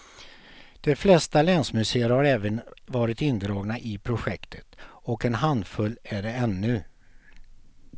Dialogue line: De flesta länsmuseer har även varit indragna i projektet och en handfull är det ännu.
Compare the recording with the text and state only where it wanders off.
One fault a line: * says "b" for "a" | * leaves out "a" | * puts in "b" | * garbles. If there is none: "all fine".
all fine